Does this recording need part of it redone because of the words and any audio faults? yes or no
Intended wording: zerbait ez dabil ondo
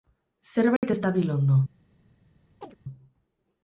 yes